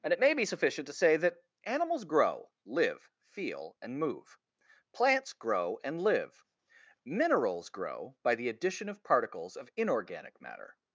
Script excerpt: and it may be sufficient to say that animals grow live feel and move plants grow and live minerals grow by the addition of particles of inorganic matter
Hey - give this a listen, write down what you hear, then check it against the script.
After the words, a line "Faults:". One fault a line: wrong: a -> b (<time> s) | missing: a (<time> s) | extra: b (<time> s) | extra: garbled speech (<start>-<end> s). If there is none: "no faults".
and it may be sufficient to say that animals grow live feel and move plants grow and live minerals grow by the addition of particles of inorganic matter
Faults:
no faults